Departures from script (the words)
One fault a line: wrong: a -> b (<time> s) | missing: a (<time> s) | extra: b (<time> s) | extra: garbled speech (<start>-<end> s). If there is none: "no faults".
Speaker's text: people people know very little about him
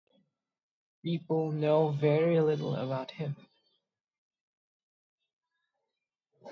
missing: people (1.5 s)